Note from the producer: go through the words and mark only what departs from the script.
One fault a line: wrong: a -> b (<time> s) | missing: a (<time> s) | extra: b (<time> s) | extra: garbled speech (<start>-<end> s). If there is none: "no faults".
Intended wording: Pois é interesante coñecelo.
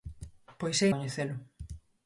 missing: interesante (0.9 s)